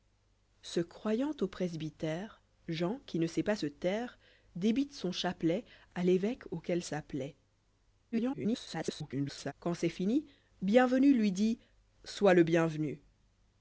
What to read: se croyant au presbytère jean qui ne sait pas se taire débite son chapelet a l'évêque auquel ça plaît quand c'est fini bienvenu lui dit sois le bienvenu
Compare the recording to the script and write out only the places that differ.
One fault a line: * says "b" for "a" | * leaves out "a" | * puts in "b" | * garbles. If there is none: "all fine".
* garbles